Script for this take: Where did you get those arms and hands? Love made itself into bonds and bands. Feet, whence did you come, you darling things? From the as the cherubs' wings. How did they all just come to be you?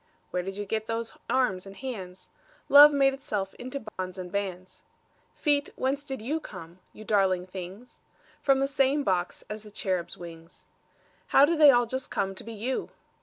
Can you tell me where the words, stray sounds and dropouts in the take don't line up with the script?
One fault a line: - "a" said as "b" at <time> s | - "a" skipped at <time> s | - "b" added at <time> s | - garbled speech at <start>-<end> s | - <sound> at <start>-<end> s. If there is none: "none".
- dropout at 3.9-4.0 s
- "same box" added at 8.7 s